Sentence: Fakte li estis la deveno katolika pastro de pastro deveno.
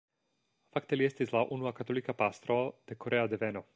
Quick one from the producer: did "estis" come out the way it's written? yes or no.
yes